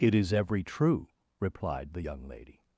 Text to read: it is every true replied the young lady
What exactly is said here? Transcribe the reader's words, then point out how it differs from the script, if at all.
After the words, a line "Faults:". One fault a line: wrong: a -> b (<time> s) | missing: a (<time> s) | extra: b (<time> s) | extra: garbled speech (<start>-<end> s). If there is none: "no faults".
it is every true replied the young lady
Faults:
no faults